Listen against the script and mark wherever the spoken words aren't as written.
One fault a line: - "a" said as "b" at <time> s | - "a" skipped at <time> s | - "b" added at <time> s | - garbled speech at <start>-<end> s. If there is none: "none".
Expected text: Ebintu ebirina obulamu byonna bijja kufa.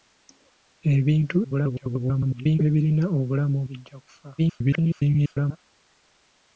- garbled speech at 1.4-2.6 s
- "byonna" skipped at 3.6 s
- garbled speech at 4.4-5.6 s